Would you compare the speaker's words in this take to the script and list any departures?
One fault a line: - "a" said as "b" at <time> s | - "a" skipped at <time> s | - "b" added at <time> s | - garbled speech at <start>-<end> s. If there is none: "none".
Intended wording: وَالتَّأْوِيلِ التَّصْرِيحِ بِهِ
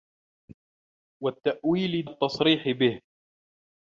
none